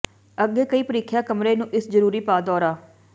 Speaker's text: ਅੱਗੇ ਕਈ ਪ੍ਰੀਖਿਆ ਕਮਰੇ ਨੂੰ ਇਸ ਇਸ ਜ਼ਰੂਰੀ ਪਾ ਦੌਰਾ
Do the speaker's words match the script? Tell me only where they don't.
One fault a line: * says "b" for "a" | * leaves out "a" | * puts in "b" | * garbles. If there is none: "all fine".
* leaves out "ਇਸ"